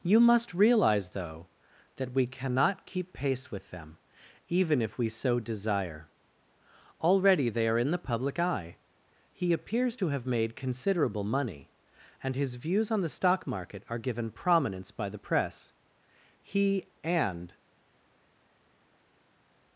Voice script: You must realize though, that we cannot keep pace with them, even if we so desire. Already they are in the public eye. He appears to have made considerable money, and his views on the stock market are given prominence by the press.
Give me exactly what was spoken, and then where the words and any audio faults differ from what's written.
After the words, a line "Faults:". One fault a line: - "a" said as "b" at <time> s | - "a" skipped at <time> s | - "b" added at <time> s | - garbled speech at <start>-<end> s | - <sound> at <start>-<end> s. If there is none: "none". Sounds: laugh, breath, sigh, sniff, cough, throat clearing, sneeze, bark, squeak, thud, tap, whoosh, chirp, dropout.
You must realize though, that we cannot keep pace with them, even if we so desire. Already they are in the public eye. He appears to have made considerable money, and his views on the stock market are given prominence by the press. He and
Faults:
- "He and" added at 16.4 s